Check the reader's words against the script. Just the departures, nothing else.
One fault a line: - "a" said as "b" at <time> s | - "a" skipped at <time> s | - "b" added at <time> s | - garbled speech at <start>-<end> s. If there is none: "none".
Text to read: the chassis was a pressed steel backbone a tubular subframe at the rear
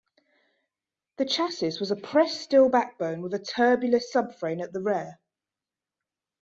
- "with" added at 3.2 s